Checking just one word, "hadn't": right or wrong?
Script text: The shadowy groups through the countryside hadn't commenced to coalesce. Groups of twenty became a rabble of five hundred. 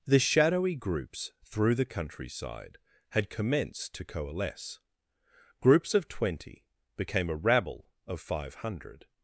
wrong